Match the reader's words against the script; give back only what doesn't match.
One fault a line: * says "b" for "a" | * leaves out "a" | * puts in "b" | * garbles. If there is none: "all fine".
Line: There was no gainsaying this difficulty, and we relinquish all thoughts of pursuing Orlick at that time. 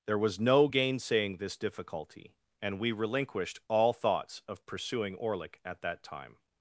* says "relinquished" for "relinquish"